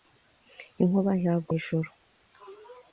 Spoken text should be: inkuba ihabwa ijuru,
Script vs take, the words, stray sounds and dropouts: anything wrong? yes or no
no